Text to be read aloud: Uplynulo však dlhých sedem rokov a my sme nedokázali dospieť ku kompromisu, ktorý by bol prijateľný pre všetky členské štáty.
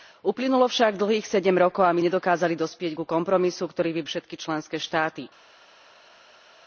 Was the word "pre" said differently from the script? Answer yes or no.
yes